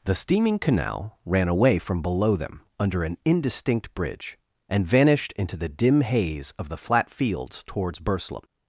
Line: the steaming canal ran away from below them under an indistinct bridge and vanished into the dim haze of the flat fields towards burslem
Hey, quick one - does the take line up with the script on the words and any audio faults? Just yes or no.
yes